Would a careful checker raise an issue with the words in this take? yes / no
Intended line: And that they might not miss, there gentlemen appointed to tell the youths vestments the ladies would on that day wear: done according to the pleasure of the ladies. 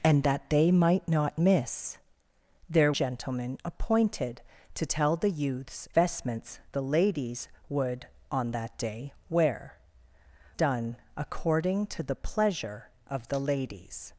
no